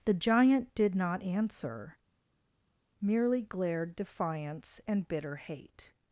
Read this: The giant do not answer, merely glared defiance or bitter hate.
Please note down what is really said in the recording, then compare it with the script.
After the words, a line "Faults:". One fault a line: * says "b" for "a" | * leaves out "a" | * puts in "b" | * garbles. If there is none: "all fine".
The giant did not answer, merely glared defiance and bitter hate.
Faults:
* says "did" for "do"
* says "and" for "or"